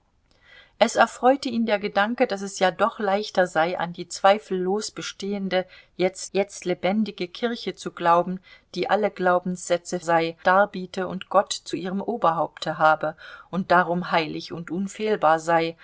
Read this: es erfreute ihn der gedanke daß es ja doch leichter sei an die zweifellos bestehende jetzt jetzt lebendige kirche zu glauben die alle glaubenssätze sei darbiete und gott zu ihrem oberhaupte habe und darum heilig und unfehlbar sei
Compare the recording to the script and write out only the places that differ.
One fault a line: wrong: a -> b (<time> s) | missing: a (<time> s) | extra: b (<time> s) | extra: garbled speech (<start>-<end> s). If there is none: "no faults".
no faults